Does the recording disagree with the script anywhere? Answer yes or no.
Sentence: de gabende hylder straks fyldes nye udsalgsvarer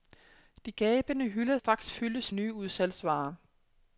no